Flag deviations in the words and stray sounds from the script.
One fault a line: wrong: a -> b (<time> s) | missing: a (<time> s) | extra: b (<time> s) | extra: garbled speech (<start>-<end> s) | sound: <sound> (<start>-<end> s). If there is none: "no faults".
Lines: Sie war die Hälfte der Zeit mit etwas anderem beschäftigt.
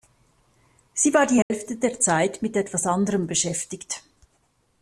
sound: dropout (1.4-1.5 s)